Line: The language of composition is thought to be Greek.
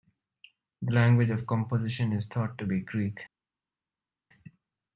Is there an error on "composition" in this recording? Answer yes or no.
no